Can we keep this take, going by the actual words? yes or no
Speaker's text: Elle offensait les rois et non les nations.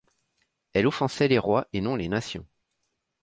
yes